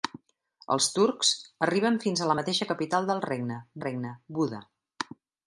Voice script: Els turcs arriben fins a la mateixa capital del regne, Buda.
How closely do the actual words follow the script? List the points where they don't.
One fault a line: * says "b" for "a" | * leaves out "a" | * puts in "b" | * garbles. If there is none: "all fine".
* puts in "regne"